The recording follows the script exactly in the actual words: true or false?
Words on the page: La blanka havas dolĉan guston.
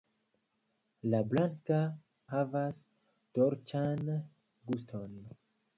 true